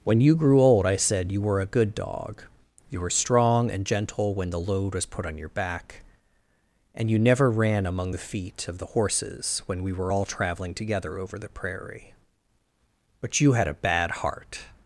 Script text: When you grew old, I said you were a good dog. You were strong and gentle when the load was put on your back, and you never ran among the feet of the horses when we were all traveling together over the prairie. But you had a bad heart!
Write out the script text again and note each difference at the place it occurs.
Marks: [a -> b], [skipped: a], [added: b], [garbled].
When you grew old, I said you were a good dog. You were strong and gentle when the load was put on your back, and you never ran among the feet of the horses when we were all traveling together over the prairie. But you had a bad heart!